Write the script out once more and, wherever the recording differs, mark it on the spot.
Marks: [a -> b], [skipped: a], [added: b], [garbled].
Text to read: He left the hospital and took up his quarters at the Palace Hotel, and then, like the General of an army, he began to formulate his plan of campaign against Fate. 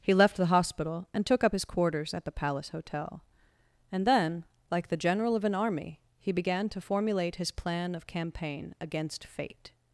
He left the hospital and took up his quarters at the Palace Hotel, and then, like the General of an army, he began to formulate his plan of campaign against Fate.